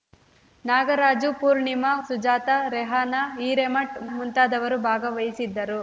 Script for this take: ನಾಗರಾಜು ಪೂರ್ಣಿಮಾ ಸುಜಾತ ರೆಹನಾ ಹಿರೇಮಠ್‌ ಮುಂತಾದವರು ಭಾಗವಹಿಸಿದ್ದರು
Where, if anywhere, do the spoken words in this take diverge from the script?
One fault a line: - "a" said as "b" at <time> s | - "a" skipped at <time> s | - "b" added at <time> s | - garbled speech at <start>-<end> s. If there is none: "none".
none